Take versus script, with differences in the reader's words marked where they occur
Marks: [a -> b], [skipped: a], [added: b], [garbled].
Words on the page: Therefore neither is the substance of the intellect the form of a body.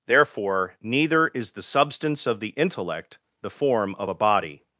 Therefore neither is the substance of the intellect the form of a body.